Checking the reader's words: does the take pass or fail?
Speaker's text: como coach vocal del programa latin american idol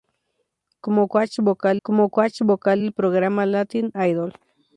fail